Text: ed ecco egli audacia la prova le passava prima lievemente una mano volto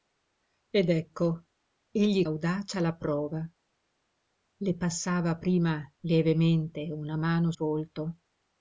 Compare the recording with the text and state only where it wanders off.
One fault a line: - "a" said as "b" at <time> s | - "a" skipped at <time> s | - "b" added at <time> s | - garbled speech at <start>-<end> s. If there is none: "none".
none